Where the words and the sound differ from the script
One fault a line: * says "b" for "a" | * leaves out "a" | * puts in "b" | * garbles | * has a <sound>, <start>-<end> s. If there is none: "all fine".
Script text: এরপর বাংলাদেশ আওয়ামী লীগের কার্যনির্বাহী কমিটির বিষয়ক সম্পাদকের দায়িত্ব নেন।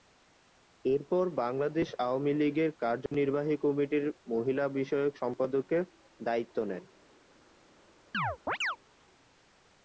* has a dropout, 3.1-3.1 s
* puts in "মহিলা"
* has a chirp, 8.1-8.8 s